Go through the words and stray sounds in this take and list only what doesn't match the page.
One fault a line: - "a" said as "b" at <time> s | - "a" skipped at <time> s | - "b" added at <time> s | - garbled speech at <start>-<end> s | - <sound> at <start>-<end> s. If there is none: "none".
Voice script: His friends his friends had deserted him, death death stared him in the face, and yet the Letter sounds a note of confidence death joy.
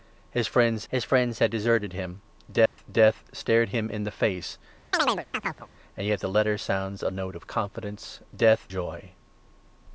- dropout at 2.7-2.8 s
- chirp at 4.9-5.7 s